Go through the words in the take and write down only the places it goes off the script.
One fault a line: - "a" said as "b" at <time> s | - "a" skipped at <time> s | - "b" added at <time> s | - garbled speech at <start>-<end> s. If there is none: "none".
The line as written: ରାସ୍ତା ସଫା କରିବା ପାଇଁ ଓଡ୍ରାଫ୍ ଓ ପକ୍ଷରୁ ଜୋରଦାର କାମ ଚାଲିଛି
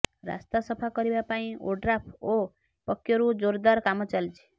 none